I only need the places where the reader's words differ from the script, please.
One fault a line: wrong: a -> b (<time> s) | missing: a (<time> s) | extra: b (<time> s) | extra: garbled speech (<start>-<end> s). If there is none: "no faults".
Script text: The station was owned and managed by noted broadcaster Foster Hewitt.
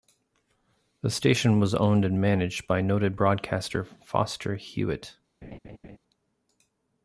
no faults